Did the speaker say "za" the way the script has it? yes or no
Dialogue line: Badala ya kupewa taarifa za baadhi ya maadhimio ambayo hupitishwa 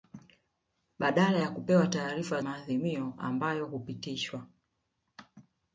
no